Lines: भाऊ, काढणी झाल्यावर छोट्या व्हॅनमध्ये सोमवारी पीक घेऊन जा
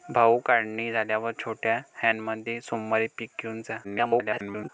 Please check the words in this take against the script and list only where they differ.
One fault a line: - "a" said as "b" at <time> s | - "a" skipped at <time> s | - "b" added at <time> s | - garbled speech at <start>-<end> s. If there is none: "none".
- garbled speech at 3.8-4.7 s